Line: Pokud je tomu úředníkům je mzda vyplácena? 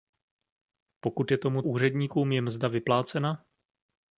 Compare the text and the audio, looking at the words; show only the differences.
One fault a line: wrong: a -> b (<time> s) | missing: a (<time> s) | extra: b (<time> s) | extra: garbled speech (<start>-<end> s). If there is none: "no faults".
no faults